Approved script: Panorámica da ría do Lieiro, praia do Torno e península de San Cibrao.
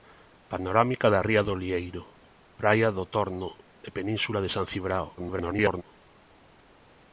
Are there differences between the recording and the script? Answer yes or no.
yes